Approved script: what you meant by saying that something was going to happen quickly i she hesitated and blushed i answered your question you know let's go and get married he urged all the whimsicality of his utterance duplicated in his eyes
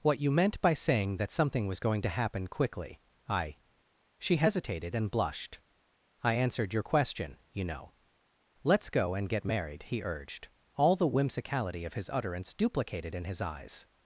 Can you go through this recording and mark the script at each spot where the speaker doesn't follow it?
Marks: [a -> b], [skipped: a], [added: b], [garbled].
what you meant by saying that something was going to happen quickly i she hesitated and blushed i answered your question you know let's go and get married he urged all the whimsicality of his utterance duplicated in his eyes